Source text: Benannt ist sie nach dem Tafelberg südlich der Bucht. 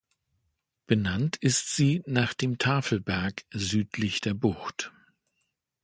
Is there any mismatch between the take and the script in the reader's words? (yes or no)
no